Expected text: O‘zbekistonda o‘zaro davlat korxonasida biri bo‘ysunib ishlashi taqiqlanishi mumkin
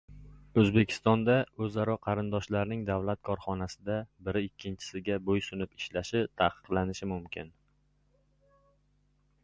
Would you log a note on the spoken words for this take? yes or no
yes